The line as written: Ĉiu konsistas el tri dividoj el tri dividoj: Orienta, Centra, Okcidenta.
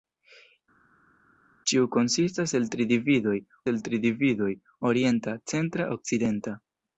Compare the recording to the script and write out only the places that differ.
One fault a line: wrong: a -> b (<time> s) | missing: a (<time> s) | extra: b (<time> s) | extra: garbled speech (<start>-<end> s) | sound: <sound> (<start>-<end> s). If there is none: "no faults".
no faults